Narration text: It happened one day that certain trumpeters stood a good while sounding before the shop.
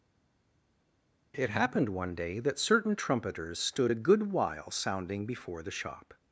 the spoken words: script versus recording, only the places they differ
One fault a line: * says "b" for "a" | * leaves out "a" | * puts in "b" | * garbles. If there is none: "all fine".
all fine